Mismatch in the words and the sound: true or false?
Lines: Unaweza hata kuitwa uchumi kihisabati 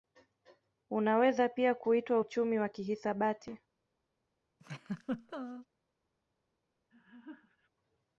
true